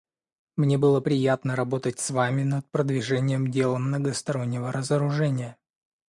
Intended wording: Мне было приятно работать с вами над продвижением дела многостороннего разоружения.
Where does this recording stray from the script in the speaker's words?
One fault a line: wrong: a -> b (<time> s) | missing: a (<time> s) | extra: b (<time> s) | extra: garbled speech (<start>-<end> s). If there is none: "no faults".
no faults